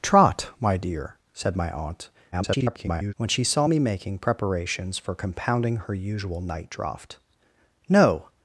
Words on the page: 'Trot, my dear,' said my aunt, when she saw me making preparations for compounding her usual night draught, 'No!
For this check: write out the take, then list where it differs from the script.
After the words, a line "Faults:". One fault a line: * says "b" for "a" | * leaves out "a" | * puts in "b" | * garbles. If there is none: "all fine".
'Trot, my dear,' said my aunt, [garbled] when she saw me making preparations for compounding her usual night draught, 'No!
Faults:
* garbles